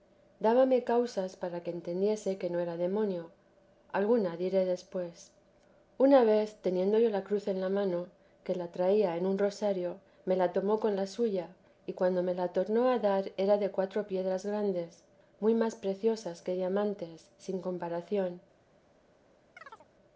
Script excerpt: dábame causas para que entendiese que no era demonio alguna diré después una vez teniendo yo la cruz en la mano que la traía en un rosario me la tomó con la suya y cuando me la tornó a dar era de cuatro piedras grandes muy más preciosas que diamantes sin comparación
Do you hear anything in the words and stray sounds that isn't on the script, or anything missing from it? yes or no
yes